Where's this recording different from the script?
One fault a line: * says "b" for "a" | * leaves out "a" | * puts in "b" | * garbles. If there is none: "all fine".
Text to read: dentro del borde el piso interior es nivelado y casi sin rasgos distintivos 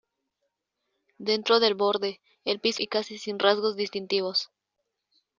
* leaves out "interior es nivelado"